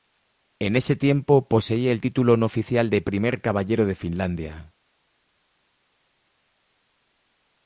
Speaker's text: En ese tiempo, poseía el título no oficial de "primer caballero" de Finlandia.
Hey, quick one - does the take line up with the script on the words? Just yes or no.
yes